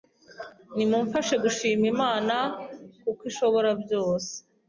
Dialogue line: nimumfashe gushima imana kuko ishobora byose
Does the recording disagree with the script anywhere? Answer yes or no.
no